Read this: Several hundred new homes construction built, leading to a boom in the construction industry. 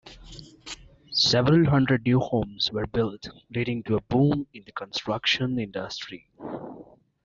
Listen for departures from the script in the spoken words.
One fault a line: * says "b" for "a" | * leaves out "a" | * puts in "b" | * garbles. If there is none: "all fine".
* says "were" for "construction"